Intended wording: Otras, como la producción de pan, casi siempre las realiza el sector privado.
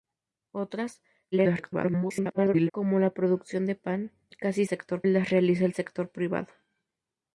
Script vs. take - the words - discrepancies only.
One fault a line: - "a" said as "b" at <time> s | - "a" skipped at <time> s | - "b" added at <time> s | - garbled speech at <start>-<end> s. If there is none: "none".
- garbled speech at 1.3-2.7 s
- "siempre" said as "sector" at 4.7 s